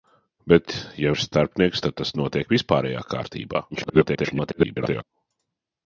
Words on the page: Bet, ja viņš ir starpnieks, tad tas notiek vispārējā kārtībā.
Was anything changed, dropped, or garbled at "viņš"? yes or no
yes